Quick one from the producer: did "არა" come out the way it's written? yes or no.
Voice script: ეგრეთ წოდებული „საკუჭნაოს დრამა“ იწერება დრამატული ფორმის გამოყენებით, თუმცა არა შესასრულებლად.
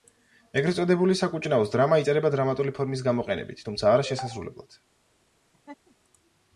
yes